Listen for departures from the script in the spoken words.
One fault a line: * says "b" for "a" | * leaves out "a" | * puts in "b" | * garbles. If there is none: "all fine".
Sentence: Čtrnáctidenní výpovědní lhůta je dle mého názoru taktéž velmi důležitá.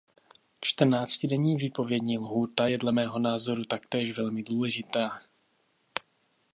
all fine